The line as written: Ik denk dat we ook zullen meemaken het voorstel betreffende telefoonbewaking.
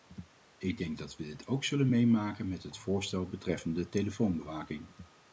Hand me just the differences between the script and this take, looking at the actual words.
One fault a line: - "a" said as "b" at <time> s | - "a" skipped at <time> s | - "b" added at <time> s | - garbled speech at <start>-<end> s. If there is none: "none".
- "dit" added at 1.2 s
- "met" added at 2.5 s